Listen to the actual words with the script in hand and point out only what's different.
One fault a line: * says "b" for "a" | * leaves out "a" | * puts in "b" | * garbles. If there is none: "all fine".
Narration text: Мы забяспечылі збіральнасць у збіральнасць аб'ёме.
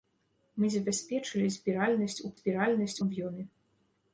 all fine